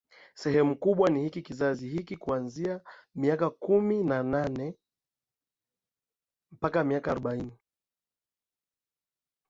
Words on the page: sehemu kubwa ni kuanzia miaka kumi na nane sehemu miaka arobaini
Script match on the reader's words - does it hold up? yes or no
no